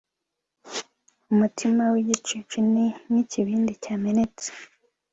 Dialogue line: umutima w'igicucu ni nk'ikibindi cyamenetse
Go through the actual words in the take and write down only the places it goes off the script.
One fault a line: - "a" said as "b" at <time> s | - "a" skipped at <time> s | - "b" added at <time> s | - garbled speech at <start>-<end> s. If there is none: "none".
none